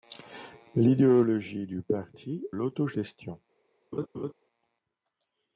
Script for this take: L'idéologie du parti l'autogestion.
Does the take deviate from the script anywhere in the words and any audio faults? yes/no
yes